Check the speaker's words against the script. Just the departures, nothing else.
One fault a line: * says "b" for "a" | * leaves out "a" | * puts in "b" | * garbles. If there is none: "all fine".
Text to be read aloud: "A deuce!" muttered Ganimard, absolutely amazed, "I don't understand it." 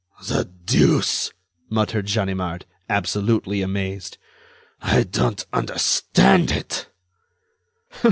* says "The" for "A"